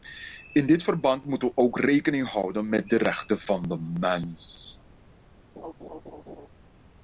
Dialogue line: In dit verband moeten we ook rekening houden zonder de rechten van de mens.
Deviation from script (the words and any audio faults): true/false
true